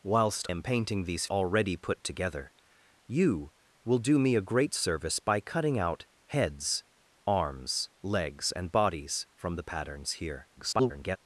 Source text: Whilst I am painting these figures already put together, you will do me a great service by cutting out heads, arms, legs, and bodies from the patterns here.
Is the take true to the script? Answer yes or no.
no